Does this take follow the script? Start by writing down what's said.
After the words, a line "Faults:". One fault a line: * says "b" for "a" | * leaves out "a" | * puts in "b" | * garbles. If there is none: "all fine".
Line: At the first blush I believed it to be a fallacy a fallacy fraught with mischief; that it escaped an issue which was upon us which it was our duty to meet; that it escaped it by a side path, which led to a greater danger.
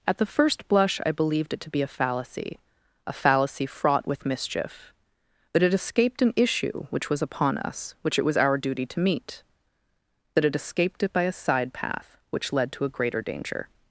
At the first blush I believed it to be a fallacy a fallacy fraught with mischief; that it escaped an issue which was upon us which it was our duty to meet; that it escaped it by a side path, which led to a greater danger.
Faults:
all fine